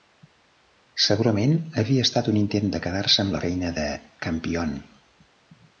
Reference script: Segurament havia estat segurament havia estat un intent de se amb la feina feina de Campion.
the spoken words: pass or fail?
fail